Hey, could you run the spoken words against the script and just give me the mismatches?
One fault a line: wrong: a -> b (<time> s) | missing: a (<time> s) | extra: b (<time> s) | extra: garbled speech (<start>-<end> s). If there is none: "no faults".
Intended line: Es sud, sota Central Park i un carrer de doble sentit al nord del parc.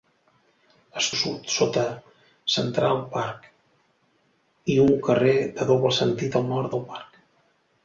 no faults